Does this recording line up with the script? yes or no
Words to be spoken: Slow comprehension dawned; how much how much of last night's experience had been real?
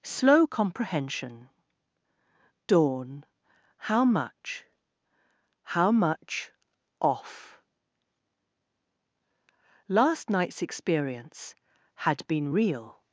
no